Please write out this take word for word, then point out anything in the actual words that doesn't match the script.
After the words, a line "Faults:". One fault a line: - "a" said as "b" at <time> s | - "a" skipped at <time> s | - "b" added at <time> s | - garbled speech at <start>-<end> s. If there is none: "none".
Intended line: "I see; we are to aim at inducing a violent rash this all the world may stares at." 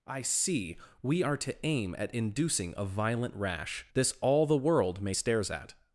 "I see; we are to aim at inducing a violent rash this all the world may stares at."
Faults:
none